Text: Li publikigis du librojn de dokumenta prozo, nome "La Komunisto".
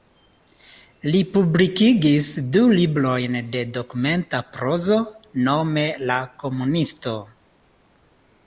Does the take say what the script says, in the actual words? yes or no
yes